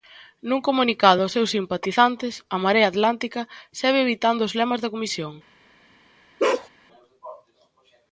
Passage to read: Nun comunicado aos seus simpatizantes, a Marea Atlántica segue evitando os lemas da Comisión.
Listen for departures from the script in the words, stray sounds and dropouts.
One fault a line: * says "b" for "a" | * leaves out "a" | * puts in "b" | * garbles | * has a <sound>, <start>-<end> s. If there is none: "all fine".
* has a bark, 6.4-6.7 s